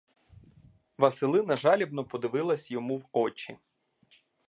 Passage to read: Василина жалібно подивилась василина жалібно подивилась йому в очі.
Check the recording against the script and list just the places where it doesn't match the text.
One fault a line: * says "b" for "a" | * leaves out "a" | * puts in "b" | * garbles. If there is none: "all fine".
* leaves out "василина жалібно подивилась"